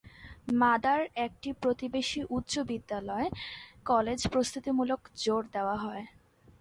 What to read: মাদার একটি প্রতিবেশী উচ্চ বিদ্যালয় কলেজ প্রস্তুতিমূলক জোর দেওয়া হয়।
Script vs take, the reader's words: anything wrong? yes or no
no